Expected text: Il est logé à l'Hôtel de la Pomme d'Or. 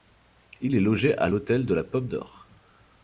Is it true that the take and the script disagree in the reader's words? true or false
false